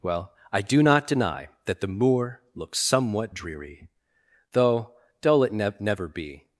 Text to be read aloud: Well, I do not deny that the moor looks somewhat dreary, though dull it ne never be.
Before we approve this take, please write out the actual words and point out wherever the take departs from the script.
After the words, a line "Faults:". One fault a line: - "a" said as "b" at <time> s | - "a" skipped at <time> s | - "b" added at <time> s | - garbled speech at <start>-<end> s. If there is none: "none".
Well, I do not deny that the moor looks somewhat dreary, though dull it ne never be.
Faults:
none